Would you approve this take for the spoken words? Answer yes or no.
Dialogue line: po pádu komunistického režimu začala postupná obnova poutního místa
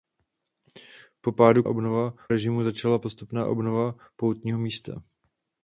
no